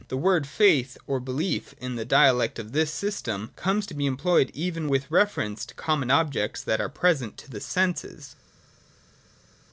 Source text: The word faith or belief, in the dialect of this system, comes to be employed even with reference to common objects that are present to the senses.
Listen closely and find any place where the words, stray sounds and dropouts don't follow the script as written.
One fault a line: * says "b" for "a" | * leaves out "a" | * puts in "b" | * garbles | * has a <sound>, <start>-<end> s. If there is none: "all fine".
all fine